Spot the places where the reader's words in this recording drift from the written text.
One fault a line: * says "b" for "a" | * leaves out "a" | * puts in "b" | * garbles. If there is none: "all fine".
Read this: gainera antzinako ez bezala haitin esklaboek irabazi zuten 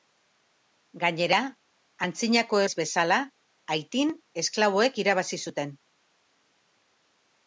all fine